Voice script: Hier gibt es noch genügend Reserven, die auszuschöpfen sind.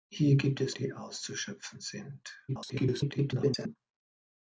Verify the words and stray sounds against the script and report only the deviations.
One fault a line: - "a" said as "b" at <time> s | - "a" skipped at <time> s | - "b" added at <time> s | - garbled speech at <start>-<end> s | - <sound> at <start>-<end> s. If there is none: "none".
- "noch genügend Reserven" skipped at 0.8 s
- garbled speech at 2.5-3.8 s